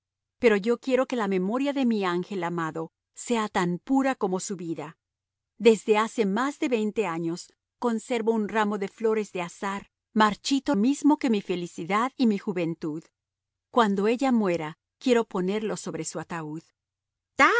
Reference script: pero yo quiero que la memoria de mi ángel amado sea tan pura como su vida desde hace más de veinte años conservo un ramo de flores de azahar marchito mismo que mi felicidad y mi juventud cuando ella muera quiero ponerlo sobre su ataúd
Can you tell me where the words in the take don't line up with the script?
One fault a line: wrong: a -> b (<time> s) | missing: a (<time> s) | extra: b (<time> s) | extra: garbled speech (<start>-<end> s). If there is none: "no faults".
no faults